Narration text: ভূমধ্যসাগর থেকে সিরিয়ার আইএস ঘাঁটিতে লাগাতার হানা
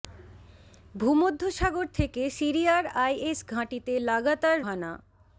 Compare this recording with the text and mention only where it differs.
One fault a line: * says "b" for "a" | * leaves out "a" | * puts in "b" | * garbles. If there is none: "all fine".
all fine